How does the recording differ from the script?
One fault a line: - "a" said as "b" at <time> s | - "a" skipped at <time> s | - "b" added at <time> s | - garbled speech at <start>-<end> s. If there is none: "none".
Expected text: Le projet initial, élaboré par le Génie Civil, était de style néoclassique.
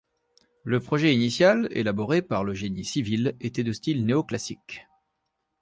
none